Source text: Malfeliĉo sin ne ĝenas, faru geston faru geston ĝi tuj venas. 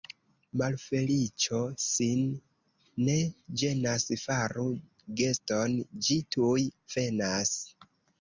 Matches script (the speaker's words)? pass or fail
fail